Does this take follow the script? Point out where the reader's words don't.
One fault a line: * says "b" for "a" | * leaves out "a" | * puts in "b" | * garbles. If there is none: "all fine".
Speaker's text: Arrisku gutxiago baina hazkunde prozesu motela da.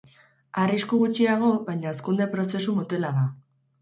all fine